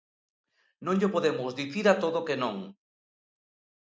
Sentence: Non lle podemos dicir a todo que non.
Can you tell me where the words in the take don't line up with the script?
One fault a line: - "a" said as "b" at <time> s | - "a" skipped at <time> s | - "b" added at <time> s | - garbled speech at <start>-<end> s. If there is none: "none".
none